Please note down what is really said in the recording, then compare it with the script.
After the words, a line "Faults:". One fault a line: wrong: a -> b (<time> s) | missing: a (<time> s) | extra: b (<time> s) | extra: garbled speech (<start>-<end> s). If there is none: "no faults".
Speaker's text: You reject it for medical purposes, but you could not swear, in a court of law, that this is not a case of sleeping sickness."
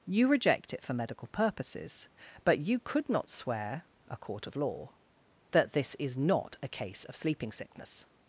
You reject it for medical purposes, but you could not swear, a court of law, that this is not a case of sleeping sickness."
Faults:
missing: in (3.9 s)